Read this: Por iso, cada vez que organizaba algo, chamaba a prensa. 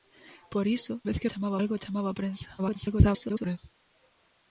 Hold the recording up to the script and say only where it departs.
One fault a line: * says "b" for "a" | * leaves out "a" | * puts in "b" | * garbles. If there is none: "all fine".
* leaves out "cada"
* says "chamaba" for "organizaba"
* garbles